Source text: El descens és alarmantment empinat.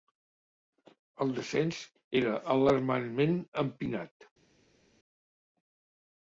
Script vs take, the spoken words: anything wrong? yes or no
yes